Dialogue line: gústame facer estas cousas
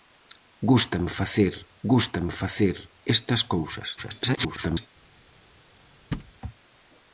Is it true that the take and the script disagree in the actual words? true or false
true